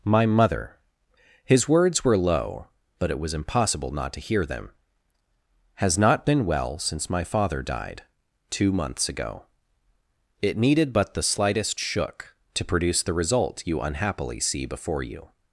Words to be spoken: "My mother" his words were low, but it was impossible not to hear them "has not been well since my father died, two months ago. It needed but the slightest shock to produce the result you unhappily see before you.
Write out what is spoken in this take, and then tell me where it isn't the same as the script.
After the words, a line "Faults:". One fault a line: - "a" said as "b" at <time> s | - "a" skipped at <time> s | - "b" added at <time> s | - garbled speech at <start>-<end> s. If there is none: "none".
"My mother" his words were low, but it was impossible not to hear them "has not been well since my father died, two months ago. It needed but the slightest shook to produce the result you unhappily see before you.
Faults:
- "shock" said as "shook" at 11.8 s